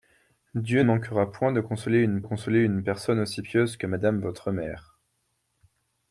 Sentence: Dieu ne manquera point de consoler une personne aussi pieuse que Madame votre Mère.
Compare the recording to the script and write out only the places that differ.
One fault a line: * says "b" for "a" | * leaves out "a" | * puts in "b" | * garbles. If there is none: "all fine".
* leaves out "ne"
* puts in "consoler une"